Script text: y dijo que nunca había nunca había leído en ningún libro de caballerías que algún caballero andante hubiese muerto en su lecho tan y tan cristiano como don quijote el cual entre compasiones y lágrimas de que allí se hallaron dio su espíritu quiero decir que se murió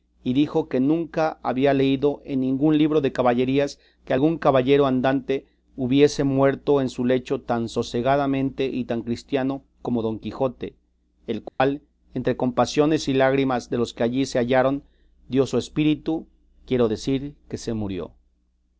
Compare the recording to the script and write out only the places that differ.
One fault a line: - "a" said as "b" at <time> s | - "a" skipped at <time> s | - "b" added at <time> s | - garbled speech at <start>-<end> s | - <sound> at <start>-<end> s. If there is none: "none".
- "nunca había" skipped at 1.8 s
- "sosegadamente" added at 7.7 s
- dropout at 11.5-11.6 s
- "los" added at 13.8 s